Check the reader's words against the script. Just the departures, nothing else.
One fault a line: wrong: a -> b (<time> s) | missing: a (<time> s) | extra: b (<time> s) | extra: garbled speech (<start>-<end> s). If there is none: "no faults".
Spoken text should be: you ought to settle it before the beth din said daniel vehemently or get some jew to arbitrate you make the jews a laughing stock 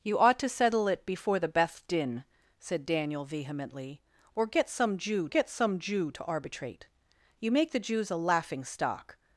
extra: get some jew (5.3 s)